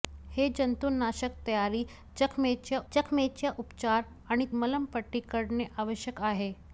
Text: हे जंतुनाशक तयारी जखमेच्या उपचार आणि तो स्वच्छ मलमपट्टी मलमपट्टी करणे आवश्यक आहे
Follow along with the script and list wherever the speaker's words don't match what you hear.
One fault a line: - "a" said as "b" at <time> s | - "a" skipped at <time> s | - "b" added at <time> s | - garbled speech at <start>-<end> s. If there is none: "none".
- "जखमेच्या" added at 2.9 s
- "तो स्वच्छ मलमपट्टी" skipped at 4.4 s